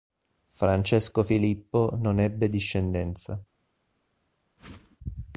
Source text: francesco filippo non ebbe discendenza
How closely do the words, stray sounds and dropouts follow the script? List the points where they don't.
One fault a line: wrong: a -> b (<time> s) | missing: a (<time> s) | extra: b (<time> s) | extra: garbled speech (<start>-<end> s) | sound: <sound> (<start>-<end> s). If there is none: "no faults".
sound: whoosh (4.6-5.0 s)